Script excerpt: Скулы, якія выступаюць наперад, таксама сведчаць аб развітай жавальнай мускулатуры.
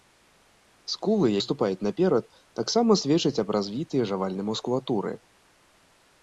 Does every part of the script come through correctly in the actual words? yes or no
no